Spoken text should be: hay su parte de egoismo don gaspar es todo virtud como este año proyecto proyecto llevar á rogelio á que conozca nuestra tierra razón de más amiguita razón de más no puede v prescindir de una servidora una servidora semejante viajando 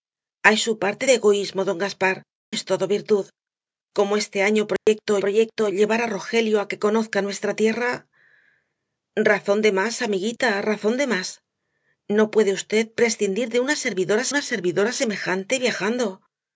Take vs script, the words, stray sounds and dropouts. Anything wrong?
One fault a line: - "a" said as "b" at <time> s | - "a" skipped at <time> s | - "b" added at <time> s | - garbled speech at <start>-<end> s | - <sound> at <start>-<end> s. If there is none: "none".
- dropout at 4.8-4.9 s